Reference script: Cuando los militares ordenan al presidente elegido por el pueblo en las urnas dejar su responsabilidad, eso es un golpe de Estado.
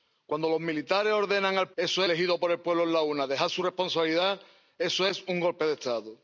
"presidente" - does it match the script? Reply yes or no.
no